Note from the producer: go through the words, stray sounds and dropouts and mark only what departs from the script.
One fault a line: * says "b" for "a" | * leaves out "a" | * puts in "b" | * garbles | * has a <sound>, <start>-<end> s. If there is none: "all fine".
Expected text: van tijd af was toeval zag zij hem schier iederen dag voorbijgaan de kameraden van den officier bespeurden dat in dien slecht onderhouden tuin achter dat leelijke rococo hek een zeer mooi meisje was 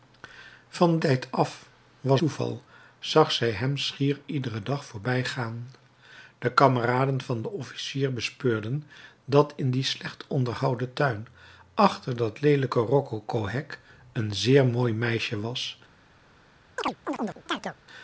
* has a chirp, 16.8-17.8 s